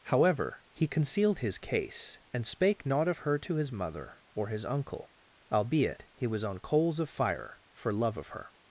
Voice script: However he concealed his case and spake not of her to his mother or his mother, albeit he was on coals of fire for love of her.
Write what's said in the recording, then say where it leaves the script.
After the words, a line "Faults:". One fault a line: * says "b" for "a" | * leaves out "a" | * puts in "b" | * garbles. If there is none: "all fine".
However he concealed his case and spake not of her to his mother or his uncle, albeit he was on coals of fire for love of her.
Faults:
* says "uncle" for "mother"